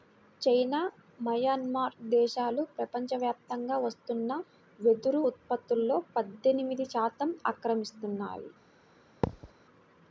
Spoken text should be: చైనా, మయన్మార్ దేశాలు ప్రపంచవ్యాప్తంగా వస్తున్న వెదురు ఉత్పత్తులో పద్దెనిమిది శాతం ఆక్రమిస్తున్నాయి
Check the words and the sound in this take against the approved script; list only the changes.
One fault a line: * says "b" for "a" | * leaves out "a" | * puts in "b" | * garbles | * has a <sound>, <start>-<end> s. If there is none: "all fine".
* has a thud, 9.2-9.5 s